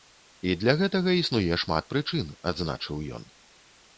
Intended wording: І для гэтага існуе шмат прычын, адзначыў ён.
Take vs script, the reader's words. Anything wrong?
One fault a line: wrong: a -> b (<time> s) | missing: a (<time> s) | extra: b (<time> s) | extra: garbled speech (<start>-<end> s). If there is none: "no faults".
no faults